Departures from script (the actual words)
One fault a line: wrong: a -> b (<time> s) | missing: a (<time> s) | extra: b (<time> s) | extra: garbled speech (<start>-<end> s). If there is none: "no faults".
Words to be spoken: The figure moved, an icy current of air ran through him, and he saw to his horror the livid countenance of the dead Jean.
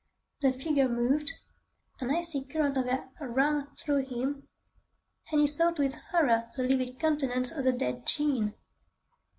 no faults